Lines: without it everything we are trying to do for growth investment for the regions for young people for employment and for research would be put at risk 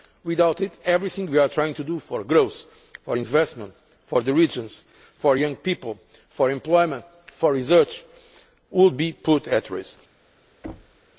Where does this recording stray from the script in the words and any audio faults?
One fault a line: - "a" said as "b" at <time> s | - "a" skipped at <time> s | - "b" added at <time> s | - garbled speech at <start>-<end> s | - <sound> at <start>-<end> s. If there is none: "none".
- "for" added at 3.0 s
- thud at 10.6-11.0 s